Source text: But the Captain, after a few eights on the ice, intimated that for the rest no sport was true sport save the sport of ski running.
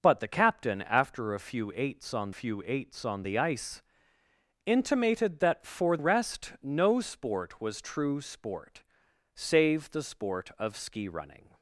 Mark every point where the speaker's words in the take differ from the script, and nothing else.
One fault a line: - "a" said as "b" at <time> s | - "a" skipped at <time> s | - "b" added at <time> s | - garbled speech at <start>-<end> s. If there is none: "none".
- "few eights on" added at 2.3 s
- "the" skipped at 6.0 s